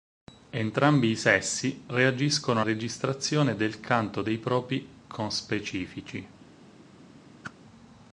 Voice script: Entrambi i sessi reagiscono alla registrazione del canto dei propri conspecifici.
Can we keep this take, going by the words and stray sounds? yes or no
no